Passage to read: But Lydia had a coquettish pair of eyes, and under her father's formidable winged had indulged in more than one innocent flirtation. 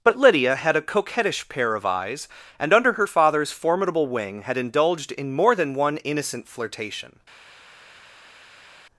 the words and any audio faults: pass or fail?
fail